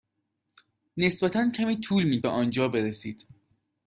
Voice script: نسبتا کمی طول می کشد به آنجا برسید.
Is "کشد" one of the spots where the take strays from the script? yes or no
yes